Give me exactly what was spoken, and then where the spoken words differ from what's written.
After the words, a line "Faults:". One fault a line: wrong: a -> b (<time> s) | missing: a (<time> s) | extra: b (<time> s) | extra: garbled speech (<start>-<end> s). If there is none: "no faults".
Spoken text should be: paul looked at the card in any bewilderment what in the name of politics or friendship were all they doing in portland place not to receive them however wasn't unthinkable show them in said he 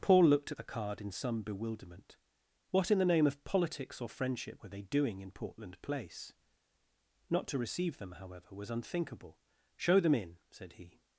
paul looked at the card in some bewilderment what in the name of politics or friendship were they doing in portland place not to receive them however was unthinkable show them in said he
Faults:
wrong: any -> some (1.1 s)
missing: all (4.7 s)
wrong: wasn't -> was (8.5 s)